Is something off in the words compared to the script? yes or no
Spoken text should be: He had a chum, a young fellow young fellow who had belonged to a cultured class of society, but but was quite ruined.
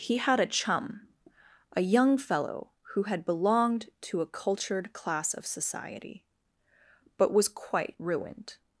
yes